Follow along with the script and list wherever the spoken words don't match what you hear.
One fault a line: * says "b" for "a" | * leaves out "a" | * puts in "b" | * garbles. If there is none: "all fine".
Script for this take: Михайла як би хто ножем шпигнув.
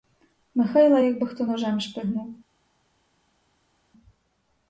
all fine